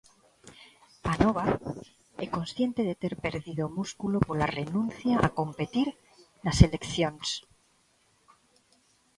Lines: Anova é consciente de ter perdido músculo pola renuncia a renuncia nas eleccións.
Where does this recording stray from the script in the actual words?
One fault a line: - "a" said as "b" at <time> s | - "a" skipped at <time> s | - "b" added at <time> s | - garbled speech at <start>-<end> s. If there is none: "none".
- "renuncia" said as "competir" at 5.4 s